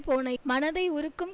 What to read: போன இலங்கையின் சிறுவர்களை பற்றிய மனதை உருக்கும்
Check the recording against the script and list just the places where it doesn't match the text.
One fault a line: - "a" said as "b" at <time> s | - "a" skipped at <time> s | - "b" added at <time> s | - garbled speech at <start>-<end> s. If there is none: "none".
- "இலங்கையின் சிறுவர்களை பற்றிய" skipped at 0.3 s